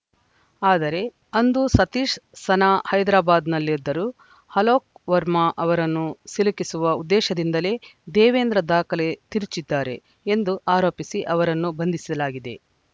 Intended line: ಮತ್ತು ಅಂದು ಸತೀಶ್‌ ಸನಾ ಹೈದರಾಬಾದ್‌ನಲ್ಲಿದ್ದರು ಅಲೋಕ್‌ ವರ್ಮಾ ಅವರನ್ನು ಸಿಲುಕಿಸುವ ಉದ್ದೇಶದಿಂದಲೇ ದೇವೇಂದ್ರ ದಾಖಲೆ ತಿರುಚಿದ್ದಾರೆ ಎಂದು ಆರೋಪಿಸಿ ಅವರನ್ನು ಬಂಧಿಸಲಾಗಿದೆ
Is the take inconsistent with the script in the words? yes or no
yes